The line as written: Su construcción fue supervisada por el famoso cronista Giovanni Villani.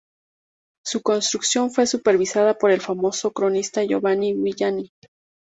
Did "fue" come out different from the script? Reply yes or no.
no